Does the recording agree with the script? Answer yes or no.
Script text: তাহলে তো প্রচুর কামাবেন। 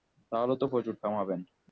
yes